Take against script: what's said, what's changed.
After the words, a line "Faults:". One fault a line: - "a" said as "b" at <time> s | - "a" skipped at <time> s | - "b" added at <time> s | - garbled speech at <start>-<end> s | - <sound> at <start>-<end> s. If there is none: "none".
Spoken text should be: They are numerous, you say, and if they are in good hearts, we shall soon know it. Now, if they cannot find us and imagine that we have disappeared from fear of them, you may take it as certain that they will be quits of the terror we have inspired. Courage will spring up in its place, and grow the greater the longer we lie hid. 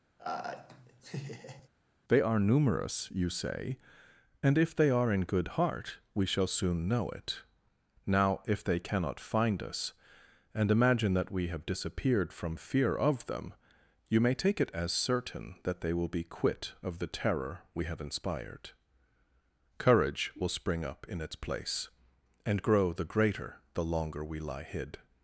They are numerous, you say, and if they are in good heart, we shall soon know it. Now, if they cannot find us and imagine that we have disappeared from fear of them, you may take it as certain that they will be quit of the terror we have inspired. Courage will spring up in its place, and grow the greater the longer we lie hid.
Faults:
- laugh at 0.2-1.7 s
- "hearts" said as "heart" at 5.5 s
- "quits" said as "quit" at 16.2 s